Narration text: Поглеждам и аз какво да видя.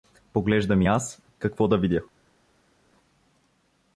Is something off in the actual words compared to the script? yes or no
no